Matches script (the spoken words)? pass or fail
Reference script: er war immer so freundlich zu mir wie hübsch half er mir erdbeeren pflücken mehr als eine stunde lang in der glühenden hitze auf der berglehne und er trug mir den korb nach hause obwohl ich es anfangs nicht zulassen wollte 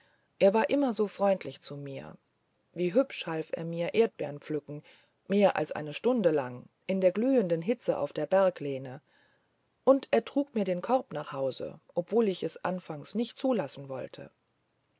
pass